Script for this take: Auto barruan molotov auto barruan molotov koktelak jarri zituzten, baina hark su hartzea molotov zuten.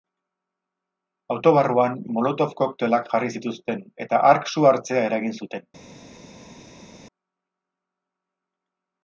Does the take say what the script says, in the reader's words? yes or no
no